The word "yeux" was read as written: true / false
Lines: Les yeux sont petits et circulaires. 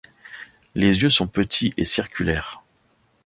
true